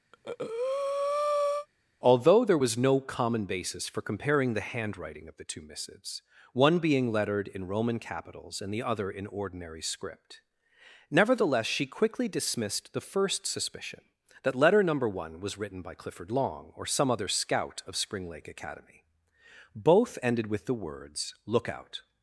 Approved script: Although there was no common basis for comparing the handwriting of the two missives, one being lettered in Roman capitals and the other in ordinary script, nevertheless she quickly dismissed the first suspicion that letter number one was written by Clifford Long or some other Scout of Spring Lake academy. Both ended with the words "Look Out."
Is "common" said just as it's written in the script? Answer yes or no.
yes